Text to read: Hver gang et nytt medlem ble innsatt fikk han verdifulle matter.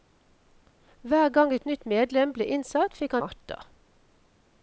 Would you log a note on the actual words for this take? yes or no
yes